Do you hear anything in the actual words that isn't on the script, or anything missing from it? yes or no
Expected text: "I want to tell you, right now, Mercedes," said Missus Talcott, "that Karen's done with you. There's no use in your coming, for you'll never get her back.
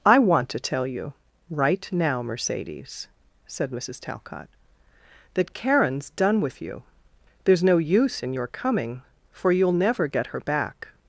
no